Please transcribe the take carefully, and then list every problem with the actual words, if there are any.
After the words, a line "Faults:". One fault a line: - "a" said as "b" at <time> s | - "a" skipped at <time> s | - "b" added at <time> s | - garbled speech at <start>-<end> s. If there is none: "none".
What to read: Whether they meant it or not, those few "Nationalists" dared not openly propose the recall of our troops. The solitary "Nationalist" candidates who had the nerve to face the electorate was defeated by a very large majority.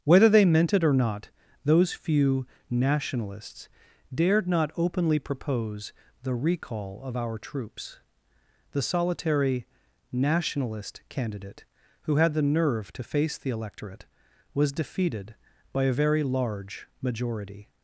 Whether they meant it or not, those few "Nationalists" dared not openly propose the recall of our troops. The solitary "Nationalist" candidate who had the nerve to face the electorate was defeated by a very large majority.
Faults:
- "candidates" said as "candidate" at 11.1 s